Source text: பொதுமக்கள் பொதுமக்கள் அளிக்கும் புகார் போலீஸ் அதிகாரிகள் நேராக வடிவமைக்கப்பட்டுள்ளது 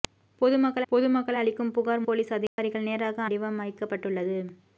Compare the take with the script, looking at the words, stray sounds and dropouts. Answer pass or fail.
fail